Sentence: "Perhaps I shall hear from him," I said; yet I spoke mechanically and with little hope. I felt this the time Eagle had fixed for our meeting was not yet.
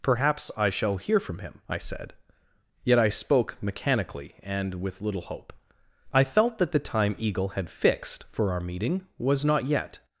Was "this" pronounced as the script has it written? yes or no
no